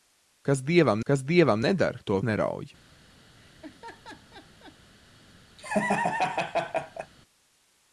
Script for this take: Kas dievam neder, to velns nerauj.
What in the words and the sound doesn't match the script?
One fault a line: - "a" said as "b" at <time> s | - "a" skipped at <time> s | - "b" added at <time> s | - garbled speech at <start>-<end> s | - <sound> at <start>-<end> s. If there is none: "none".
- "kas dievam" added at 1.1 s
- "velns" skipped at 2.2 s
- laugh at 3.4-4.8 s
- laugh at 5.6-7.1 s